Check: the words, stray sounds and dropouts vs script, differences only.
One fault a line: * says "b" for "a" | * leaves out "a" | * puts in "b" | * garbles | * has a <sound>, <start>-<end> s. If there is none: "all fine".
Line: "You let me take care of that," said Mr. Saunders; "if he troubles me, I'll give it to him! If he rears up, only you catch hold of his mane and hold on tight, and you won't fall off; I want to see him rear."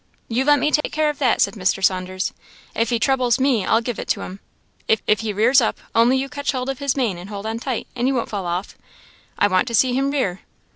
* has a dropout, 0.8-0.8 s
* puts in "if"